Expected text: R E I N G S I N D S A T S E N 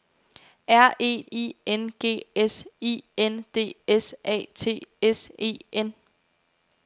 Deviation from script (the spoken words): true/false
false